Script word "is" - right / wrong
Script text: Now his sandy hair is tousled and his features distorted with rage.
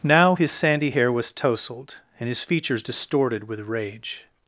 wrong